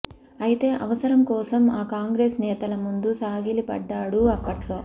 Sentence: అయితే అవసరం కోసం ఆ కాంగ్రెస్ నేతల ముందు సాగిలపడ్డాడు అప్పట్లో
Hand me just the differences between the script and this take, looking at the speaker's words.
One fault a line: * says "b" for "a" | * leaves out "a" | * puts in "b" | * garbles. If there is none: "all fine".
all fine